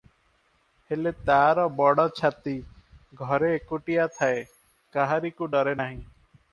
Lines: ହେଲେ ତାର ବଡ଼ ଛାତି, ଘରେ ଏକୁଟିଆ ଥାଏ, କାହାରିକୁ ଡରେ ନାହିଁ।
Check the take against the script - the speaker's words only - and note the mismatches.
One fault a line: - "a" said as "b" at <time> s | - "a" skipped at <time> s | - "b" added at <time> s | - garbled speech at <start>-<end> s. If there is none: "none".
none